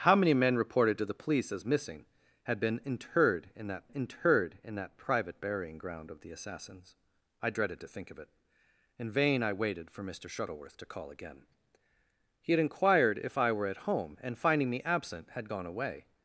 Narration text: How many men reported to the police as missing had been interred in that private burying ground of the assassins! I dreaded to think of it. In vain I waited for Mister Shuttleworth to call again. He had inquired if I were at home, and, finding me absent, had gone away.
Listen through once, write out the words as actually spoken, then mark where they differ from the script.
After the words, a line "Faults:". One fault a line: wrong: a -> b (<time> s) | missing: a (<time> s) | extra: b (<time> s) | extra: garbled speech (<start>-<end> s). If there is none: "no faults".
How many men reported to the police as missing had been interred in that interred in that private burying ground of the assassins! I dreaded to think of it. In vain I waited for Mister Shuttleworth to call again. He had inquired if I were at home, and, finding me absent, had gone away.
Faults:
extra: interred in that (3.9 s)